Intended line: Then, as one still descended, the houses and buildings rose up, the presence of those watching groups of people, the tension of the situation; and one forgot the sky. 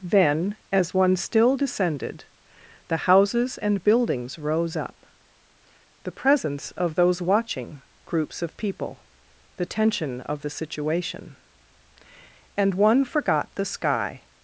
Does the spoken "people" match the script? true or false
true